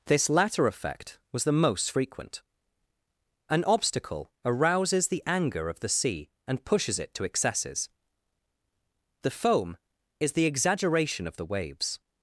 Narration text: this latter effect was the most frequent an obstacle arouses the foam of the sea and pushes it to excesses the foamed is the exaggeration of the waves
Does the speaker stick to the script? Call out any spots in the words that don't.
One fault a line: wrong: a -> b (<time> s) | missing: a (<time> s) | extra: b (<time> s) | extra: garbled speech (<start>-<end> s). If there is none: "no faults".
wrong: foam -> anger (5.3 s)
wrong: foamed -> foam (9.3 s)